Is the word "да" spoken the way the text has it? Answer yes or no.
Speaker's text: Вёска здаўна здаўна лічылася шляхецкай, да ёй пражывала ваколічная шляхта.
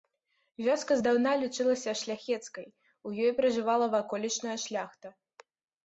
no